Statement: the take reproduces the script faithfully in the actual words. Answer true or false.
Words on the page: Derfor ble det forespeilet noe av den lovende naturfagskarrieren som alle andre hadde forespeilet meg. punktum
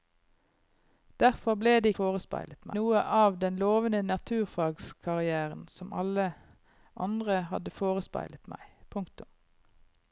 true